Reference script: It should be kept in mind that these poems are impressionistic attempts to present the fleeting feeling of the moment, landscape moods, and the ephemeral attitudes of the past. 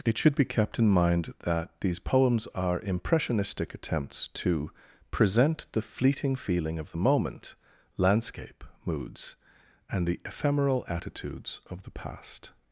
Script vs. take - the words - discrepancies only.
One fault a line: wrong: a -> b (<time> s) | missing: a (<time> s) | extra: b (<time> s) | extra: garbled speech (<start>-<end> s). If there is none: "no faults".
no faults